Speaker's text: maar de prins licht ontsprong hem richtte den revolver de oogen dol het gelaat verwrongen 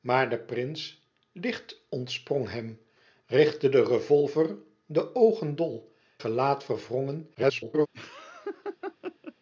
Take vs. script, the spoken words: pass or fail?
fail